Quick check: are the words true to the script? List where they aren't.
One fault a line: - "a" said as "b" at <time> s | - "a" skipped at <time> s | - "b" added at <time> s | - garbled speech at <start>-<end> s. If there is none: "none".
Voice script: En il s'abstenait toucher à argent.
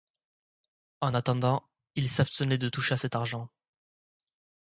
- "attendant" added at 1.1 s
- "de" added at 2.6 s
- "cet" added at 3.0 s